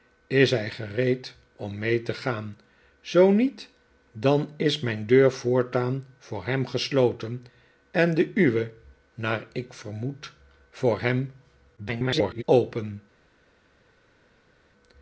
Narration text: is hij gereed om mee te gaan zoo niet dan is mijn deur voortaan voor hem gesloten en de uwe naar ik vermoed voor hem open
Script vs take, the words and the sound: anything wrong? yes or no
yes